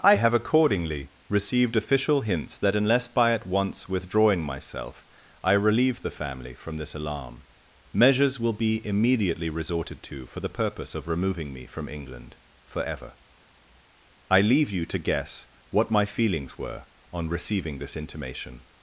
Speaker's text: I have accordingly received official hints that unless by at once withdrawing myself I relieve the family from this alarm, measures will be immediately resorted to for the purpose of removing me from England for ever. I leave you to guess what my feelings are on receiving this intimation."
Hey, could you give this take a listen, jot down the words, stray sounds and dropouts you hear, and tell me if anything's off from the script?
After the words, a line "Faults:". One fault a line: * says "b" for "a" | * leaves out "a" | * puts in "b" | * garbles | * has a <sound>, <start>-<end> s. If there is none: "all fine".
I have accordingly received official hints that unless by at once withdrawing myself I relieve the family from this alarm, measures will be immediately resorted to for the purpose of removing me from England for ever. I leave you to guess what my feelings were on receiving this intimation."
Faults:
* says "were" for "are"